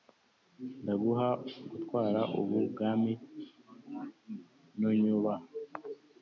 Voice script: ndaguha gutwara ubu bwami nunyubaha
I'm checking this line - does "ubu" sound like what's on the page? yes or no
yes